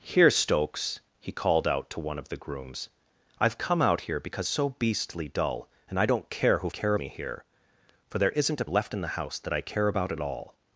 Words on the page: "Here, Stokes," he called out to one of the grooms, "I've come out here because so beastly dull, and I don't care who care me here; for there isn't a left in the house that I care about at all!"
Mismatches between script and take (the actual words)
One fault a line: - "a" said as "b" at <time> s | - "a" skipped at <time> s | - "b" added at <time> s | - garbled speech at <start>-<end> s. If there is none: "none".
none